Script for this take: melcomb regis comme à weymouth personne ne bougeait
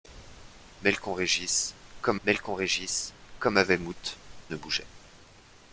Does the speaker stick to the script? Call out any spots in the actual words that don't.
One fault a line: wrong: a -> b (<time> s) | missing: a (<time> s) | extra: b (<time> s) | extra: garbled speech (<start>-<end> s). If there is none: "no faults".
extra: melcomb regis comme (2.3 s)
missing: personne (4.2 s)